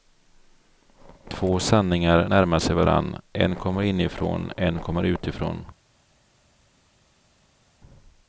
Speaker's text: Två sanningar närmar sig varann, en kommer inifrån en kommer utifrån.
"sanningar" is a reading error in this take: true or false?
false